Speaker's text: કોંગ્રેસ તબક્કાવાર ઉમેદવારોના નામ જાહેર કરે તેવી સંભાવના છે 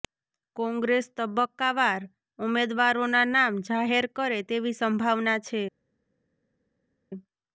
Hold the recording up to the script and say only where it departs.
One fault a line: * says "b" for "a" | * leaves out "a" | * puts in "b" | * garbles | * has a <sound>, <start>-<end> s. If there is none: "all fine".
all fine